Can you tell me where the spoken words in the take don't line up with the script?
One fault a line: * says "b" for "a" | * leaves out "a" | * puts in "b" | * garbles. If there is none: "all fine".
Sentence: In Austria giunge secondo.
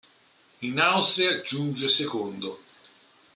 all fine